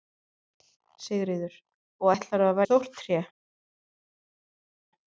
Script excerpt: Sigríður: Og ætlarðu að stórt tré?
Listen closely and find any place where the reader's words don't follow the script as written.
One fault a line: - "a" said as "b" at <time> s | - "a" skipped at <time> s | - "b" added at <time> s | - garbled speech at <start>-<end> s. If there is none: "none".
none